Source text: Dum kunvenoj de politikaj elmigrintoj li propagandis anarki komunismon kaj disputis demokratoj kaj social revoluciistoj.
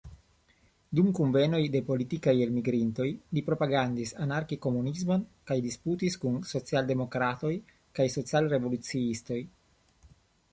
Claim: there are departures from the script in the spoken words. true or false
true